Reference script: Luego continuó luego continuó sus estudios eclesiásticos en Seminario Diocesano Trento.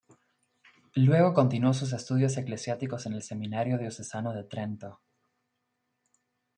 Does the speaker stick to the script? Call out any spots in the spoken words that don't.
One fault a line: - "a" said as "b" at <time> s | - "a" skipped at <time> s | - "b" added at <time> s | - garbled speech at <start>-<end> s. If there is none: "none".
- "luego continuó" skipped at 1.8 s
- "el" added at 3.1 s
- "de" added at 4.3 s